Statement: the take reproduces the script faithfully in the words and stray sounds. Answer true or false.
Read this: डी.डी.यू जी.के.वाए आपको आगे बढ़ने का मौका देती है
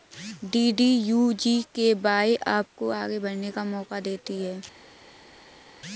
true